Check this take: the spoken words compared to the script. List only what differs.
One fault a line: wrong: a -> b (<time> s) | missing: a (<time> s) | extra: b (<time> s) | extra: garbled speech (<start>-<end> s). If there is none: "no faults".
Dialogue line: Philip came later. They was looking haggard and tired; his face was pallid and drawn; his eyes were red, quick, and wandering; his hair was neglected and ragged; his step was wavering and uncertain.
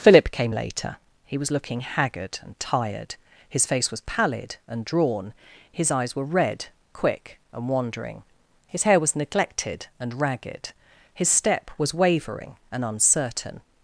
wrong: They -> He (1.2 s)